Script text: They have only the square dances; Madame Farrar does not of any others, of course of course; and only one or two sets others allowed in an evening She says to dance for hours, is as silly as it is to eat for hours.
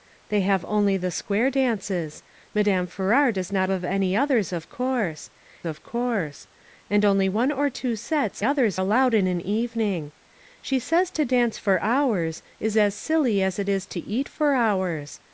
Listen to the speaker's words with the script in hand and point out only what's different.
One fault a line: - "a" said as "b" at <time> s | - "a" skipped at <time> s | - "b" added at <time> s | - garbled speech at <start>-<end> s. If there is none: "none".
none